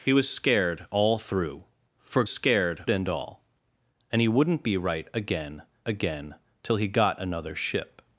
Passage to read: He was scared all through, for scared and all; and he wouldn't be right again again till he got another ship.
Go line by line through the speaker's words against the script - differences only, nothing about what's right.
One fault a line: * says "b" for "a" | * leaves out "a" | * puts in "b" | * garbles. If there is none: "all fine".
all fine